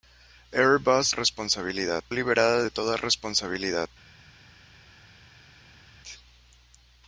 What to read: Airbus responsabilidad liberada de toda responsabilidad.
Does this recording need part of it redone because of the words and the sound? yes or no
no